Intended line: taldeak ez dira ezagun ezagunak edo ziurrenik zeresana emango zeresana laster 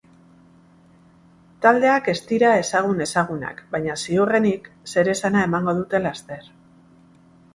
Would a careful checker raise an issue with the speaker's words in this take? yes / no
yes